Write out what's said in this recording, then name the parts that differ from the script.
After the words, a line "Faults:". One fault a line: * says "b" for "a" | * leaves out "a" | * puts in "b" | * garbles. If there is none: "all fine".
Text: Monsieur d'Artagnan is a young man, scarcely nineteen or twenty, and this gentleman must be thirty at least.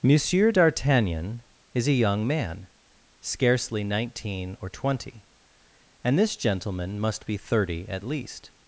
Monsieur d'Artagnan is a young man, scarcely nineteen or twenty, and this gentleman must be thirty at least.
Faults:
all fine